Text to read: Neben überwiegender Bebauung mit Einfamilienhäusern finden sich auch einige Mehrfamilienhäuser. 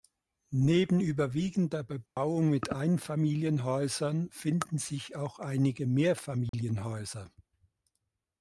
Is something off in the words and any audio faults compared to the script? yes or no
yes